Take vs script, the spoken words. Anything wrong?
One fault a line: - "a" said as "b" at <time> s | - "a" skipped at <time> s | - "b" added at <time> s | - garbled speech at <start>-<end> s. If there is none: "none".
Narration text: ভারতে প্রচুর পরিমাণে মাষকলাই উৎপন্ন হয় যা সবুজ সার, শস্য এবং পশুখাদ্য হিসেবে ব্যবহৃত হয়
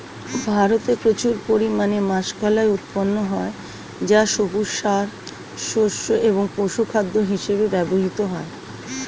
none